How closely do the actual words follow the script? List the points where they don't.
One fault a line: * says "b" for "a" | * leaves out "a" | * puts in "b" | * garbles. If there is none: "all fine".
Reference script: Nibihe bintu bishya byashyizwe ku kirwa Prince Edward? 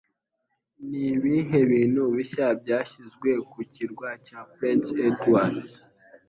* puts in "cya"